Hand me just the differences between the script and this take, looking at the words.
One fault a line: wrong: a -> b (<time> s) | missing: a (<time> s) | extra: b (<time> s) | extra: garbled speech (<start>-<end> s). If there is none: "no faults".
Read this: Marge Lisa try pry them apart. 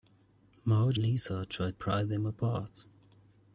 no faults